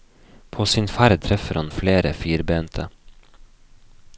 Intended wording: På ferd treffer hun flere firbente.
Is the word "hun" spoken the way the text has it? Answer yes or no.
no